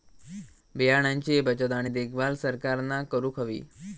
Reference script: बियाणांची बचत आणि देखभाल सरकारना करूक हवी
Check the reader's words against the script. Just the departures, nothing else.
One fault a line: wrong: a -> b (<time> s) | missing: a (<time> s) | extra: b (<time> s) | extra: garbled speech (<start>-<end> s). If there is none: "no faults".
no faults